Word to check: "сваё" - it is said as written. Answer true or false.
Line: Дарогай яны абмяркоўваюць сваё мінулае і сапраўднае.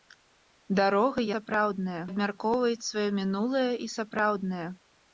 true